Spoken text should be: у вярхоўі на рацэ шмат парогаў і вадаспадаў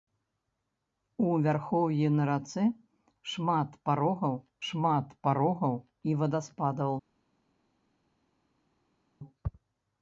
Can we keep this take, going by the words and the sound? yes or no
no